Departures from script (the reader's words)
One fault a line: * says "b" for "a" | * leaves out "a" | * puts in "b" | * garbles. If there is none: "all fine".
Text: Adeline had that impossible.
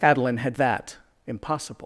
all fine